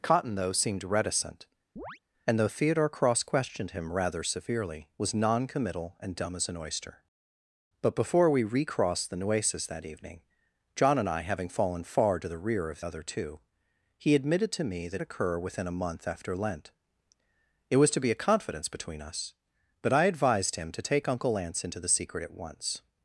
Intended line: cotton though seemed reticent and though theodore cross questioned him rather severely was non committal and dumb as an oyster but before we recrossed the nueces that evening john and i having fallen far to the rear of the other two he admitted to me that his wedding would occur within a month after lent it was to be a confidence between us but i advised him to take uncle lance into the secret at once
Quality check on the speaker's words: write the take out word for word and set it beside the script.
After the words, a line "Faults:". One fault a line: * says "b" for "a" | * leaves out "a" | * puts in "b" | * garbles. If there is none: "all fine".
cotton though seemed reticent and though theodore cross questioned him rather severely was non committal and dumb as an oyster but before we recrossed the nueces that evening john and i having fallen far to the rear of other two he admitted to me that occur within a month after lent it was to be a confidence between us but i advised him to take uncle lance into the secret at once
Faults:
* leaves out "the"
* leaves out "his wedding would"